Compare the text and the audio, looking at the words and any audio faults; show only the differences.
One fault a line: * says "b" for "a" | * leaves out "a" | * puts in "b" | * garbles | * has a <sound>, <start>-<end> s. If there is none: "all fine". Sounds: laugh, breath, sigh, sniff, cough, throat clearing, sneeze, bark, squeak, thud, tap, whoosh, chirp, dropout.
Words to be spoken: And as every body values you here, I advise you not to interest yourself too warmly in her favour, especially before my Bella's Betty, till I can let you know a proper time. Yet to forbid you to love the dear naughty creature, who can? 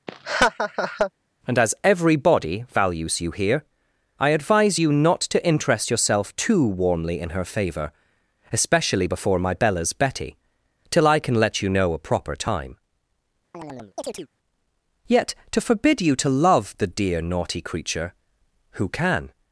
* has a laugh, 0.1-1.1 s
* has a chirp, 13.5-14.3 s